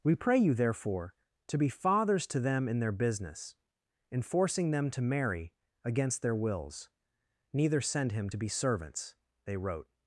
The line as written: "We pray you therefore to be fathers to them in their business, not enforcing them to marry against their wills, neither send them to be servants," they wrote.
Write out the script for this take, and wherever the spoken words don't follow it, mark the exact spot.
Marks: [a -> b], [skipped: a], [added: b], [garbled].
"We pray you therefore to be fathers to them in their business, [skipped: not] enforcing them to marry against their wills, neither send [them -> him] to be servants," they wrote.